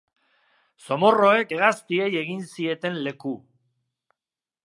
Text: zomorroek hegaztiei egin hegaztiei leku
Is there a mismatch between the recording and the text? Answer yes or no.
yes